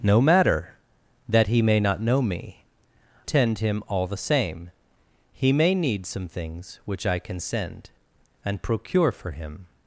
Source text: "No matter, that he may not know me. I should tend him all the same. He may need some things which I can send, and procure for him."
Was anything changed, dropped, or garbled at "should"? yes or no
yes